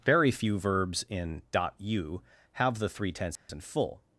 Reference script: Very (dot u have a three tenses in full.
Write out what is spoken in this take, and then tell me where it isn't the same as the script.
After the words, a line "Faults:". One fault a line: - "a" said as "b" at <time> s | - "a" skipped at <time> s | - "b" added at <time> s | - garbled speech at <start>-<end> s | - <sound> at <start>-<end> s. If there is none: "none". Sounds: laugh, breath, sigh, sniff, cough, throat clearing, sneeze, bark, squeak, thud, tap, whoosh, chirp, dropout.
Very few verbs in (dot u have the three tenses in full.
Faults:
- "few verbs in" added at 0.3 s
- "a" said as "the" at 2.8 s
- dropout at 3.4-3.5 s